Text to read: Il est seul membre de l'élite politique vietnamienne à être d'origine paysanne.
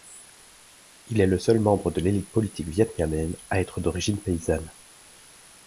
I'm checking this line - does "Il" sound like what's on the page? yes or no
yes